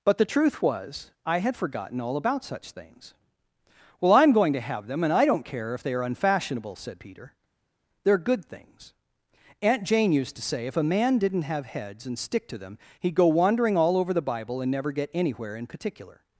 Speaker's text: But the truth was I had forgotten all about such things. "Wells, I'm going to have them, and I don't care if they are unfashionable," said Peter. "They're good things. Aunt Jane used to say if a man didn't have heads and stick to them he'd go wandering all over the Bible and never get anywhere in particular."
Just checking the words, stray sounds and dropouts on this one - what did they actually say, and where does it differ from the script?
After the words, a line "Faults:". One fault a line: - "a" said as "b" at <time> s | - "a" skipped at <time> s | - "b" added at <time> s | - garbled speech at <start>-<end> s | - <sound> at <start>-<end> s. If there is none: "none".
But the truth was I had forgotten all about such things. "Well, I'm going to have them, and I don't care if they are unfashionable," said Peter. "They're good things. Aunt Jane used to say if a man didn't have heads and stick to them he'd go wandering all over the Bible and never get anywhere in particular."
Faults:
- "Wells" said as "Well" at 4.0 s